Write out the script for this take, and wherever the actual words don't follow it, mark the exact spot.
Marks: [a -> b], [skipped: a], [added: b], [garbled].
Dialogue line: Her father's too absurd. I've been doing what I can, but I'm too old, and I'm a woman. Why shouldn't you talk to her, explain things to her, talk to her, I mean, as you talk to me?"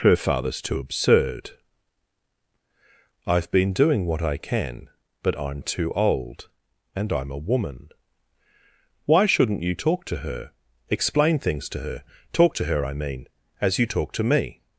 Her father's too absurd. I've been doing what I can, but I'm too old, and I'm a woman. Why shouldn't you talk to her, explain things to her, talk to her, I mean, as you talk to me?"